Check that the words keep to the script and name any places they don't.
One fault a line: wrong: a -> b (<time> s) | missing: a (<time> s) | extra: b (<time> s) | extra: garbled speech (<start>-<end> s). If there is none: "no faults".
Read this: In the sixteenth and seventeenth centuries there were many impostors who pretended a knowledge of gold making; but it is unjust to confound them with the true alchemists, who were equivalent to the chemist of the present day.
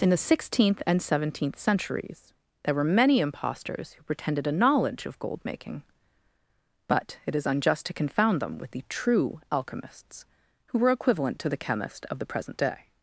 no faults